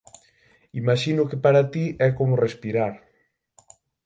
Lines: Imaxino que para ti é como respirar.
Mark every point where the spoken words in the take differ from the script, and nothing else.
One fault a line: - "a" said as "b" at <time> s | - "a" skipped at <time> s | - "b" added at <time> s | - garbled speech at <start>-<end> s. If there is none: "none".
none